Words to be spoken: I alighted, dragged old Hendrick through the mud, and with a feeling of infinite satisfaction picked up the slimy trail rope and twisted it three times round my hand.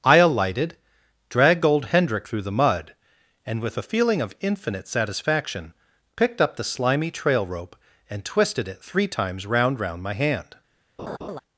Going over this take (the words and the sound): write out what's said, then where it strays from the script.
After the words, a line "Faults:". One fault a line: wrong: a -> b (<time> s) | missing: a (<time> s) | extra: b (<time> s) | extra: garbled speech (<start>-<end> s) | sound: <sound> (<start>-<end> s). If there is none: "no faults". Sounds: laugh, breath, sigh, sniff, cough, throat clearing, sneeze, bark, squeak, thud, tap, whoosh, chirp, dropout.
I alighted, dragged old Hendrick through the mud, and with a feeling of infinite satisfaction picked up the slimy trail rope and twisted it three times round round my hand.
Faults:
extra: round (9.8 s)
sound: laugh (11.0-11.4 s)